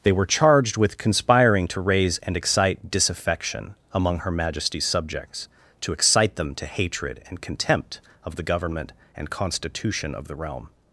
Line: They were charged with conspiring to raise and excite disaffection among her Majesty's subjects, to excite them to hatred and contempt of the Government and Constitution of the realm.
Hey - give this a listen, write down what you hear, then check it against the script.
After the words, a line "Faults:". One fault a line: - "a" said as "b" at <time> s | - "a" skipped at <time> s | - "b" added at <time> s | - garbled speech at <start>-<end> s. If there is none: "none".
They were charged with conspiring to raise and excite disaffection among her Majesty's subjects, to excite them to hatred and contempt of the Government and Constitution of the realm.
Faults:
none